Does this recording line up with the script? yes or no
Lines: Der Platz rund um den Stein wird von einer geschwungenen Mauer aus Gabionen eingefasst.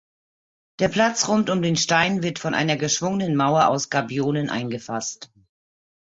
yes